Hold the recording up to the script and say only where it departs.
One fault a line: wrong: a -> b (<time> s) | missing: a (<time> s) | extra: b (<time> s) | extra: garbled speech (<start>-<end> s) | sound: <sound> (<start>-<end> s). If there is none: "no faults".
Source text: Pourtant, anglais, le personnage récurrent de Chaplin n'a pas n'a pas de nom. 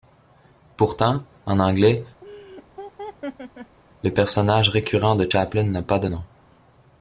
extra: en (1.4 s)
sound: laugh (2.2-3.8 s)
missing: n'a pas (6.0 s)